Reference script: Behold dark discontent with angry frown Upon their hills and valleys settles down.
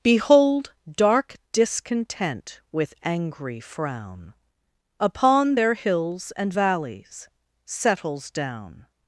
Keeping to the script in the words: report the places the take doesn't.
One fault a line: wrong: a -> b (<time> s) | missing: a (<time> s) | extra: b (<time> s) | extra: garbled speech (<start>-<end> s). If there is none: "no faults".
no faults